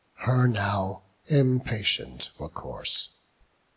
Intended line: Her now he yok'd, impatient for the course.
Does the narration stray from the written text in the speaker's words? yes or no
yes